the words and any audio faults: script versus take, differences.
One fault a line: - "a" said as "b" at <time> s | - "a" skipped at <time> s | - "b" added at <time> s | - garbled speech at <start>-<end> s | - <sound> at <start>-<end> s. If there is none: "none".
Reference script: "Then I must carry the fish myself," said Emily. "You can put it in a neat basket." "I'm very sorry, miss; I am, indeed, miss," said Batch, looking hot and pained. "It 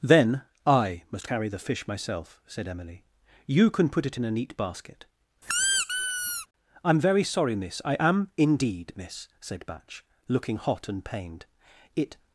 - squeak at 5.4-6.5 s